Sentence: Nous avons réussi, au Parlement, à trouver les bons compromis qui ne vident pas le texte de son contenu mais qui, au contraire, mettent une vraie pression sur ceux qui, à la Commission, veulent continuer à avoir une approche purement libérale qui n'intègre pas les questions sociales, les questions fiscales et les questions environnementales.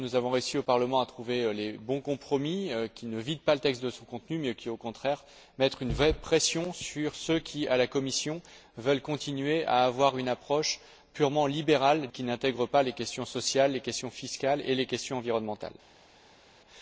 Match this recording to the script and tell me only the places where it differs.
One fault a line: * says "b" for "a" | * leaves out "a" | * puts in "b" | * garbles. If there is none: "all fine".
all fine